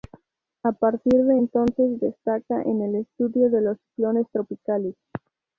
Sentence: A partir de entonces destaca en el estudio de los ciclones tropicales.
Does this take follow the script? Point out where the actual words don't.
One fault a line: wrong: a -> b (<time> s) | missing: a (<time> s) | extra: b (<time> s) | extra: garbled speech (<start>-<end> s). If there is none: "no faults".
no faults